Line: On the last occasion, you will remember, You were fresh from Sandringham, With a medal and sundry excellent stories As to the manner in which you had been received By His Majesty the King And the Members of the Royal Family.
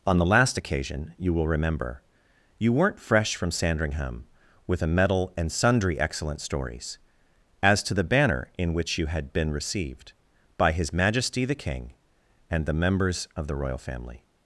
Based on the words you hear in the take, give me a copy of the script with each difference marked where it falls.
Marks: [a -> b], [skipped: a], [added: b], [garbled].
On the last occasion, you will remember, You [were -> weren't] fresh from Sandringham, With a medal and sundry excellent stories As to the [manner -> banner] in which you had been received By His Majesty the King And the Members of the Royal Family.